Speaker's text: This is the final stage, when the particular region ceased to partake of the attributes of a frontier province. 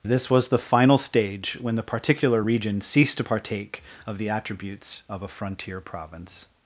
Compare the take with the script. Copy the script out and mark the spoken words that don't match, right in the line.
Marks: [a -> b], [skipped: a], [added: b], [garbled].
This [is -> was] the final stage, when the particular region ceased to partake of the attributes of a frontier province.